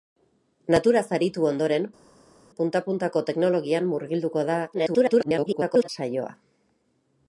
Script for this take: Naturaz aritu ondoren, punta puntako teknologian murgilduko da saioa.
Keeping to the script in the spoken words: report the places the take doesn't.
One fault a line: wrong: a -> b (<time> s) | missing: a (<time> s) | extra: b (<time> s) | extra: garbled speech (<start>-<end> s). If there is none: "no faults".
extra: garbled speech (4.7-5.9 s)